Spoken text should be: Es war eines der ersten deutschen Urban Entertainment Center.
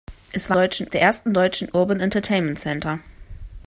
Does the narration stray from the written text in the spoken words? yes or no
yes